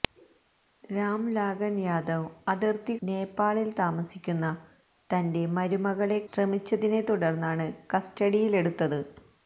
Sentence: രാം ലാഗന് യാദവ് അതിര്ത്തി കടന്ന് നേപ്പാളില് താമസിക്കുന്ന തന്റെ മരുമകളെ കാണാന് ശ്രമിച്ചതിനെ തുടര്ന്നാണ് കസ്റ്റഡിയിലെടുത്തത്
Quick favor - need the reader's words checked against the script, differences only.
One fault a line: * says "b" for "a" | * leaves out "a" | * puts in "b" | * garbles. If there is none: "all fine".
* leaves out "കടന്ന്"
* leaves out "കാണാന്"